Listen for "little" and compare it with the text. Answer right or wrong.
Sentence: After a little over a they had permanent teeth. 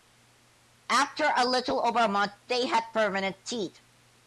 right